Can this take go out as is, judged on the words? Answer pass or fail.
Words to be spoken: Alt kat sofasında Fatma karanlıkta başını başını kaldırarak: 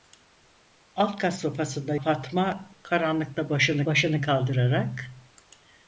pass